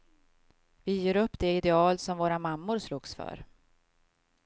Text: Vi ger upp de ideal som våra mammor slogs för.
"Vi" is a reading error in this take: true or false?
false